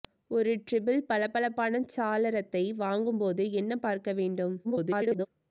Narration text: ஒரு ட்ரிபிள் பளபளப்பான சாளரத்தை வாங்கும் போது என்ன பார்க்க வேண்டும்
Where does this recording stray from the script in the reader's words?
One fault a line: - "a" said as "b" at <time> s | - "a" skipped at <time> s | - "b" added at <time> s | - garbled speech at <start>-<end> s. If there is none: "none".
- garbled speech at 4.6-5.3 s